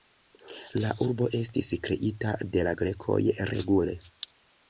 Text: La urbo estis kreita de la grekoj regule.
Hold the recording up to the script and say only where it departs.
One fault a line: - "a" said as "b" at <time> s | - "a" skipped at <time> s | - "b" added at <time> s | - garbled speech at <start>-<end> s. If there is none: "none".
none